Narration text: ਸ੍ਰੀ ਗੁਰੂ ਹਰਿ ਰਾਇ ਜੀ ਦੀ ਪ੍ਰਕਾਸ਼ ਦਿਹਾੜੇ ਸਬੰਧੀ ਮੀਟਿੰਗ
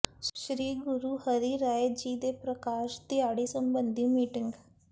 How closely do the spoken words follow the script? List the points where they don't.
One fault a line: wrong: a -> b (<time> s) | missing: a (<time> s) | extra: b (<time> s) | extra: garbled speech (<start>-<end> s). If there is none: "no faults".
wrong: ਦੀ -> ਦੇ (2.2 s)